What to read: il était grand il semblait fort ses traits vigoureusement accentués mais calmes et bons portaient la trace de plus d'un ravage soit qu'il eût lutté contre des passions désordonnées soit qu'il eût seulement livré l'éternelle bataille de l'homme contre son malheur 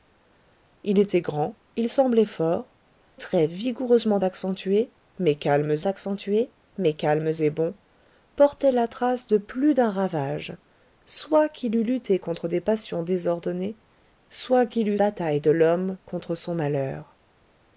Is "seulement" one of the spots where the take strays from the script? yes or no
yes